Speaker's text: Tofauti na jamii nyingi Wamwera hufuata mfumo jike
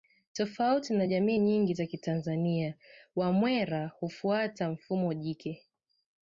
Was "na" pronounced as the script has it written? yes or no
yes